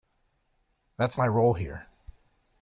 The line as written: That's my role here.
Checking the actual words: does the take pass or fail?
pass